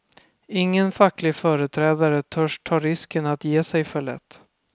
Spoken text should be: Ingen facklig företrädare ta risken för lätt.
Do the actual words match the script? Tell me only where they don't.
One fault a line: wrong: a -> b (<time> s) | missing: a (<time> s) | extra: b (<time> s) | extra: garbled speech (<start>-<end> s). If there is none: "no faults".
extra: törs (2.2 s)
extra: att ge sig (3.2 s)